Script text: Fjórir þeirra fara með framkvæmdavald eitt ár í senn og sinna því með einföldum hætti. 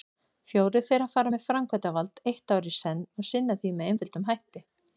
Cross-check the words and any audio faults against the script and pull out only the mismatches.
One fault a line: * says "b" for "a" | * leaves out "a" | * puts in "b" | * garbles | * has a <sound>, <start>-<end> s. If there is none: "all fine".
all fine